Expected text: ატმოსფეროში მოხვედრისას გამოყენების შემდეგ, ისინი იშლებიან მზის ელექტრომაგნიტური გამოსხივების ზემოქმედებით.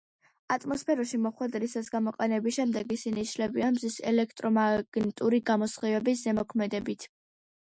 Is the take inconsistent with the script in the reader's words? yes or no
no